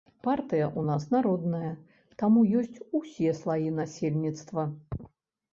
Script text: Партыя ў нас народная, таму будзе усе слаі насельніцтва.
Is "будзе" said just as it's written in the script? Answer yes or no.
no